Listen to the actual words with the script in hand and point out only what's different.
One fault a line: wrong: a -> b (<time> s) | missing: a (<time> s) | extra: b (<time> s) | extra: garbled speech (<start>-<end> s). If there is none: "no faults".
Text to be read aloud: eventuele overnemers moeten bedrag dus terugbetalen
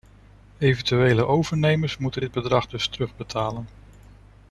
extra: dit (2.2 s)